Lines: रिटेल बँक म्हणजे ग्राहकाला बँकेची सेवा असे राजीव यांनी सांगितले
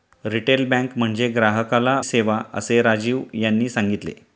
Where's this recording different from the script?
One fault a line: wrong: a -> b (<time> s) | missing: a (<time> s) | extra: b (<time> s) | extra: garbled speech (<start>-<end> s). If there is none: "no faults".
missing: बँकेची (2.0 s)